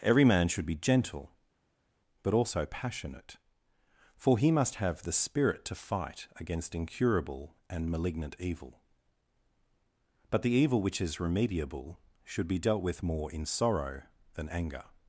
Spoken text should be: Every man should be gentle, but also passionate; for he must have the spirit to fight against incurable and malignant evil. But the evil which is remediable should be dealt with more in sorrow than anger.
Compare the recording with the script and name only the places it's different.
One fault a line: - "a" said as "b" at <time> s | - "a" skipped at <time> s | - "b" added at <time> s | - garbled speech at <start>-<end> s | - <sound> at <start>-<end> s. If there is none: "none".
none